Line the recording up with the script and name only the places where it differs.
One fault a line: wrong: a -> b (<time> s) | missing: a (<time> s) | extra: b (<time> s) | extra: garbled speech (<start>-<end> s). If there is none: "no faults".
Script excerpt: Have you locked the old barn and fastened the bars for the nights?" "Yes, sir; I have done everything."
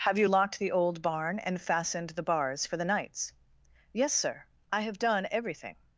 no faults